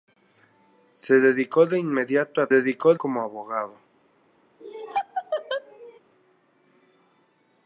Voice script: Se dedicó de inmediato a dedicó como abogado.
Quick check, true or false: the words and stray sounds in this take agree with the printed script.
false